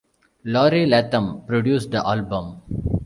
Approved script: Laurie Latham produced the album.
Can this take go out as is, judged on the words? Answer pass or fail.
pass